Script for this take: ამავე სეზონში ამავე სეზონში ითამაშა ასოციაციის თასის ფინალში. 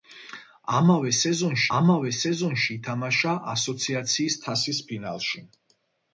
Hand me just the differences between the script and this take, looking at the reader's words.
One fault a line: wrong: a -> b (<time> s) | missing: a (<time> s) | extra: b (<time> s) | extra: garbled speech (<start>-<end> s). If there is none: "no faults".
no faults